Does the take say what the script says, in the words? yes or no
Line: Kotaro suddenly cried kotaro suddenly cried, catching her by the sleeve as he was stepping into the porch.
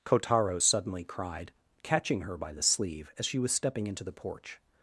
no